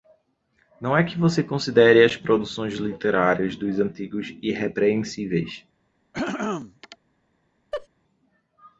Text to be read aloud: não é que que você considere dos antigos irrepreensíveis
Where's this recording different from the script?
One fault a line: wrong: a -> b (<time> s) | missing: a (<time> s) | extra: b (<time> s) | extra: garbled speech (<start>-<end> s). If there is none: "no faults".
missing: que (1.1 s)
extra: as produções literárias (2.0 s)